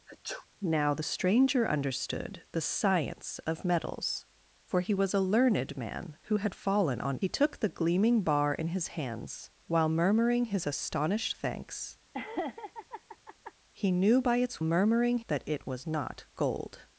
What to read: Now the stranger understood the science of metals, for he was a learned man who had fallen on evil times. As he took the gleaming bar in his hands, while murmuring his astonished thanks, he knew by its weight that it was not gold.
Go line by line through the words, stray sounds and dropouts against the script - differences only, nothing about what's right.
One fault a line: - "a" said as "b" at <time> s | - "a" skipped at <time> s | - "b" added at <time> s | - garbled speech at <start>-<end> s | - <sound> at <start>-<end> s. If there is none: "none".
- sneeze at 0.1-0.5 s
- "evil times As" skipped at 7.2 s
- laugh at 12.1-13.5 s
- "weight" said as "murmuring" at 14.6 s